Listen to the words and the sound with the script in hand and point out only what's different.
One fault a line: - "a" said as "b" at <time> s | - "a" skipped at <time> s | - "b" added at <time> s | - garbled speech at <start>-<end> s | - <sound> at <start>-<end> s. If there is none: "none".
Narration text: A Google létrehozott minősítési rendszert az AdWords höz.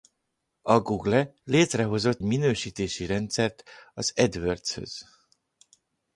none